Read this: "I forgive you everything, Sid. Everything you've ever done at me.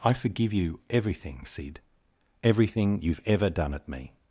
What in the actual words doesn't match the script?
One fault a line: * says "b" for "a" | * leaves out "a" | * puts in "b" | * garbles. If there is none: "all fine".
all fine